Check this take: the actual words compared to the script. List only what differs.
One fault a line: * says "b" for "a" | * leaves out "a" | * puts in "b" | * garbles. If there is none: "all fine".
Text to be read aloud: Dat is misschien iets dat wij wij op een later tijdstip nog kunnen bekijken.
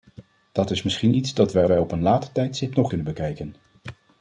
all fine